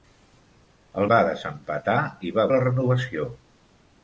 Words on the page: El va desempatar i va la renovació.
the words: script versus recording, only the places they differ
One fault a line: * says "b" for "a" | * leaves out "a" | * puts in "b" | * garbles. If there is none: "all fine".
all fine